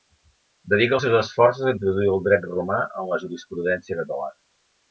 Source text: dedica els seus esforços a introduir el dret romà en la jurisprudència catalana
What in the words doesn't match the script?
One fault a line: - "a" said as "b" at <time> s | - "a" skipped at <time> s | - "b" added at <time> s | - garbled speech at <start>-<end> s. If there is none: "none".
none